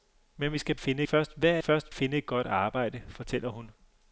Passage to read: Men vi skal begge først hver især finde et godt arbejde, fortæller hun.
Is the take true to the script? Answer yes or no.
no